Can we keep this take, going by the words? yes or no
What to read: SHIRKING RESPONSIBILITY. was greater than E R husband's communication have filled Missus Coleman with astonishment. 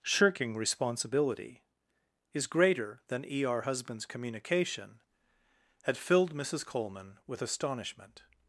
no